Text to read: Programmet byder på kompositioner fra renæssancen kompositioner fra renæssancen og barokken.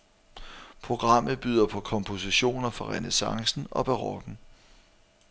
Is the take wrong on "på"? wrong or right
right